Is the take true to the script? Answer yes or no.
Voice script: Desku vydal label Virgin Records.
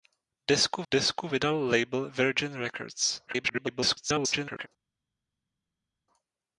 no